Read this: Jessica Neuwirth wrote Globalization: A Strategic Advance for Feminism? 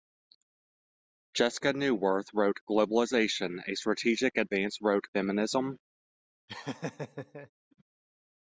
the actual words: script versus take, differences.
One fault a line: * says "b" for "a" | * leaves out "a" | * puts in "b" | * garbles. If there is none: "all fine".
* says "wrote" for "for"